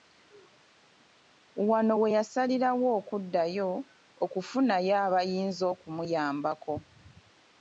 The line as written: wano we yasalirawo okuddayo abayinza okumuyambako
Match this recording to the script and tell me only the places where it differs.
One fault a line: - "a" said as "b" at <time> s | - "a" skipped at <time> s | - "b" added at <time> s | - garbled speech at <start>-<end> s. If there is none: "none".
- "okufunayo" added at 4.2 s